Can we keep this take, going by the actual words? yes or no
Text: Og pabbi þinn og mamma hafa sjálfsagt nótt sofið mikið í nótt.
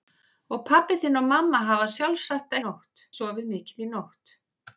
yes